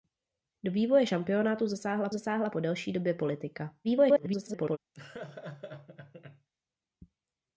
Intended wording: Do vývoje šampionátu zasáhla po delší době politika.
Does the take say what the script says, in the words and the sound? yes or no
no